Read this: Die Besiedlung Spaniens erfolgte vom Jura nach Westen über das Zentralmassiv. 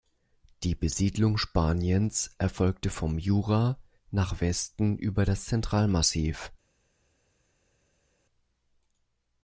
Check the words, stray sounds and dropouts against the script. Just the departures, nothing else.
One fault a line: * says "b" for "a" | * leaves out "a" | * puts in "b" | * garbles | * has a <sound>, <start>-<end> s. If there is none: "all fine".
all fine